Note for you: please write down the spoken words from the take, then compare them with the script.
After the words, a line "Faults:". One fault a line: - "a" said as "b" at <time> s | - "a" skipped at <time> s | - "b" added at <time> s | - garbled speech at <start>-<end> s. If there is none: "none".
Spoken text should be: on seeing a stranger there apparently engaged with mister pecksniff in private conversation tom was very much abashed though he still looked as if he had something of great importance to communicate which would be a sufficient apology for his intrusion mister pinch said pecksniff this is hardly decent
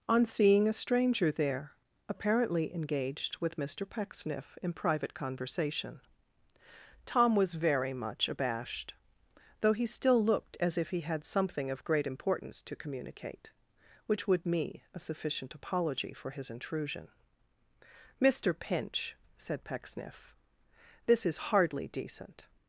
on seeing a stranger there apparently engaged with mister pecksniff in private conversation tom was very much abashed though he still looked as if he had something of great importance to communicate which would me a sufficient apology for his intrusion mister pinch said pecksniff this is hardly decent
Faults:
- "be" said as "me" at 14.4 s